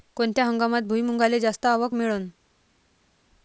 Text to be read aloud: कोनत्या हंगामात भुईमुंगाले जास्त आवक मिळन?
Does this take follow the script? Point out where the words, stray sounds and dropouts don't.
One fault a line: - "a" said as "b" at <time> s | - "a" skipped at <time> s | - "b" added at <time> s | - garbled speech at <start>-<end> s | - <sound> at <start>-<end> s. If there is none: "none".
none